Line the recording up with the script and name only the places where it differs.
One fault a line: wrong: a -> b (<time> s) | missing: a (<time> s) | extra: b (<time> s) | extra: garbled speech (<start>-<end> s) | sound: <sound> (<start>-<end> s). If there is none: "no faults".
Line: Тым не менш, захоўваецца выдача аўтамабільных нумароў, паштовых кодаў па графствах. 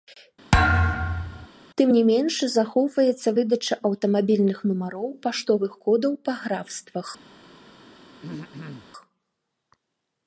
sound: thud (0.5-1.5 s)
sound: throat clearing (8.2-8.9 s)